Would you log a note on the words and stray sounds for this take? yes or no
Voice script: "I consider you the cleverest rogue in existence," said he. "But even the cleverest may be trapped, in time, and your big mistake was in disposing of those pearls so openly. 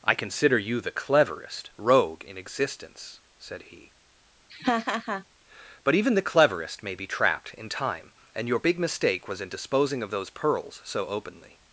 yes